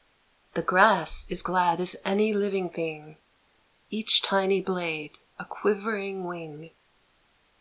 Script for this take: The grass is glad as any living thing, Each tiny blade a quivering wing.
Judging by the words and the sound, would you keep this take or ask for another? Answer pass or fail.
pass